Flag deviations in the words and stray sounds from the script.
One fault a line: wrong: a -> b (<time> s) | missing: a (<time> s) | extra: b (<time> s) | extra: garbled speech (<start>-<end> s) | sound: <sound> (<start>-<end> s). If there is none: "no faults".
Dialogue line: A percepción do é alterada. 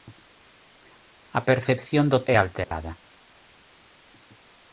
sound: dropout (2.6-2.7 s)